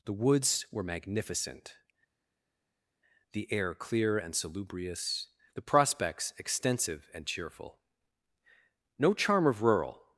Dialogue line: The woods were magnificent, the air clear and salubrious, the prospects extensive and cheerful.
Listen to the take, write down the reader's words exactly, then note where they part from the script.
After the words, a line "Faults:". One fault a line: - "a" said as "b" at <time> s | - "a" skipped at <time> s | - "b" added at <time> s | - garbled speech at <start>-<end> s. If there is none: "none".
The woods were magnificent, the air clear and salubrious, the prospects extensive and cheerful. No charm of rural
Faults:
- "No charm of rural" added at 9.0 s